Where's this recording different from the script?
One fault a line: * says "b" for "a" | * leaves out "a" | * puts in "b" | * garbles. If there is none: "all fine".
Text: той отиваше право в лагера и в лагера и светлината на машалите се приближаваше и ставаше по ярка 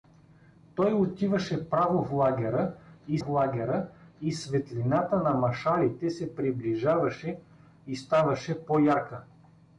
all fine